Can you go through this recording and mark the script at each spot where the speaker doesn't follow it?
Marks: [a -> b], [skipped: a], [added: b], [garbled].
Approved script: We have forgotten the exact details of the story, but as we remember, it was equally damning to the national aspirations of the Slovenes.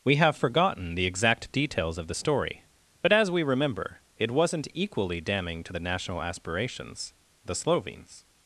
We have forgotten the exact details of the story, but as we remember, it [was -> wasn't] equally damning to the national aspirations [skipped: of] the Slovenes.